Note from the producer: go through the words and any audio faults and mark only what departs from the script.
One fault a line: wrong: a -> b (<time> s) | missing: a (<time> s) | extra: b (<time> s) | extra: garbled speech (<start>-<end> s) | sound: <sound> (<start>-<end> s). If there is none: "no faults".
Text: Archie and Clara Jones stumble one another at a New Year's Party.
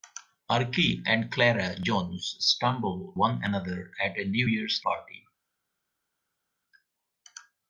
no faults